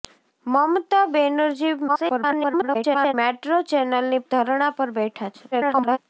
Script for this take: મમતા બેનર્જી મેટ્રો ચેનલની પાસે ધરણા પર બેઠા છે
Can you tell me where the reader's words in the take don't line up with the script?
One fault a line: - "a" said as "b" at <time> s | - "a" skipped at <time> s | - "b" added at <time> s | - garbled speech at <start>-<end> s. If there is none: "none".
- garbled speech at 1.9-3.1 s
- "પાસે" skipped at 4.2 s
- garbled speech at 5.5-6.0 s